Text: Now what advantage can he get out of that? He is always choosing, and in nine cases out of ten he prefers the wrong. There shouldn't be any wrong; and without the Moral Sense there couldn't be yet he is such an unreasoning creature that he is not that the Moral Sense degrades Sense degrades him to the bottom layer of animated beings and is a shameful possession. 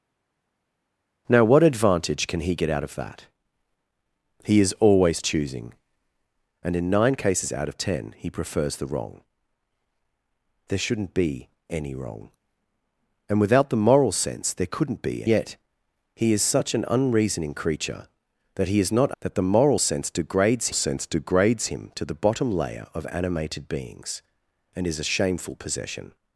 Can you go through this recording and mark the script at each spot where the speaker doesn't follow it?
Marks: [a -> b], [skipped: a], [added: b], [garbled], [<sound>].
Now what advantage can he get out of that? He is always choosing, and in nine cases out of ten he prefers the wrong. There shouldn't be any wrong; and without the Moral Sense there couldn't be yet he is such an unreasoning creature that he is not that the Moral Sense degrades Sense degrades him to the bottom layer of animated beings and is a shameful possession.